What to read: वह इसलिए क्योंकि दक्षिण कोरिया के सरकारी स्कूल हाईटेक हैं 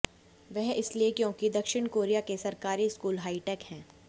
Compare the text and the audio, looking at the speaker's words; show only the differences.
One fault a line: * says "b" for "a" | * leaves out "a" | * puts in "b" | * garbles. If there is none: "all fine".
all fine